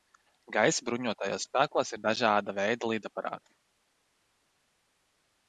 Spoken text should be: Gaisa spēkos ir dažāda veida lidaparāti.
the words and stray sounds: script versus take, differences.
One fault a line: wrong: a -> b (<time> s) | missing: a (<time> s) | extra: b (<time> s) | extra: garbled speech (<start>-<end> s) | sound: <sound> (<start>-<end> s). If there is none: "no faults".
extra: bruņotajos (0.9 s)